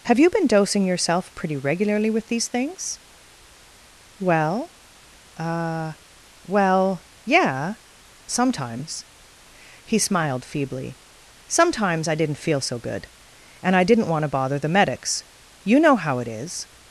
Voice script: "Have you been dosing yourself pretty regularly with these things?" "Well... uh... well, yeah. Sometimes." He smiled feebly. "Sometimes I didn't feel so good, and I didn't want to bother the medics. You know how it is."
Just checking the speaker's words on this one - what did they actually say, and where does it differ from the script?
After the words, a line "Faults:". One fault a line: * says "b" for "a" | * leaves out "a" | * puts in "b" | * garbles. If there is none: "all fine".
"Have you been dosing yourself pretty regularly with these things?" "Well... uh... well, yeah. Sometimes." He smiled feebly. "Sometimes I didn't feel so good, and I didn't want to bother the medics. You know how it is."
Faults:
all fine